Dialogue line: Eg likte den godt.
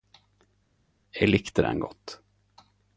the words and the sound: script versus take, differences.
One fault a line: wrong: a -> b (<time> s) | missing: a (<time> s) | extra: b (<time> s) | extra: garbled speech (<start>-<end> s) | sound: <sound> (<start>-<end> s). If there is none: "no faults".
no faults